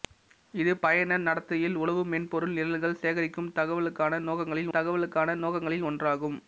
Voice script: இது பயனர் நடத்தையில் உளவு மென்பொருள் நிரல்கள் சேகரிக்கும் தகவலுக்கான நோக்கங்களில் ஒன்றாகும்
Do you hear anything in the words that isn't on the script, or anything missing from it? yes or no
yes